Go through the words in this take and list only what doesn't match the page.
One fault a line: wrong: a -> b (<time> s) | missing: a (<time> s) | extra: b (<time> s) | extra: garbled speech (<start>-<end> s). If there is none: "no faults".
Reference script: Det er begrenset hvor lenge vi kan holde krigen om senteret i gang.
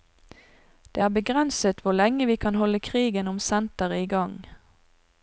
no faults